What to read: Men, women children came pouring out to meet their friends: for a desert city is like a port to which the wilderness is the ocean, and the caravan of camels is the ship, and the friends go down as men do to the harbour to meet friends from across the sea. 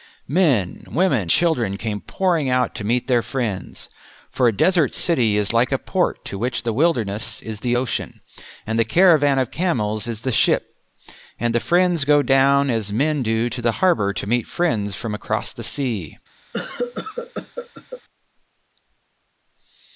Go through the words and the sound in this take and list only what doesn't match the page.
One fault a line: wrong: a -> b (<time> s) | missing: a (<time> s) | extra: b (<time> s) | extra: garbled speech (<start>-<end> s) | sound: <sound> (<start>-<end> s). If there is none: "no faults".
sound: cough (16.5-18.0 s)